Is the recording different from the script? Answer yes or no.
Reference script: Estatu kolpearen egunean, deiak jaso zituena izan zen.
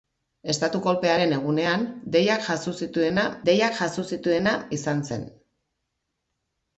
yes